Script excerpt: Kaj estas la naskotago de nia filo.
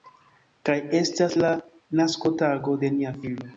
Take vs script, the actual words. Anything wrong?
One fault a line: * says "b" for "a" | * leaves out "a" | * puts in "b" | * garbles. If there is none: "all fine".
all fine